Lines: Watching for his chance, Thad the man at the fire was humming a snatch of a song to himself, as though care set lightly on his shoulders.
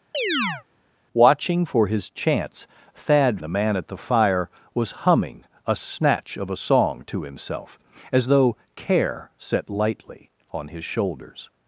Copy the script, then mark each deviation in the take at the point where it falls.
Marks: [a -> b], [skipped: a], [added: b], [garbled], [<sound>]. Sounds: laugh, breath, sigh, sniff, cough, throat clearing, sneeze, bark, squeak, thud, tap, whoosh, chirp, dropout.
[chirp] Watching for his chance, Thad the man at the fire was humming a snatch of a song to himself, as though care set lightly on his shoulders.